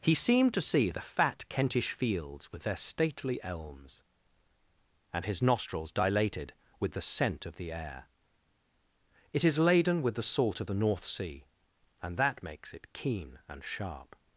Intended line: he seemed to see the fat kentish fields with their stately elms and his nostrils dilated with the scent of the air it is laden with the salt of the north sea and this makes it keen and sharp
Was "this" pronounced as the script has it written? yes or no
no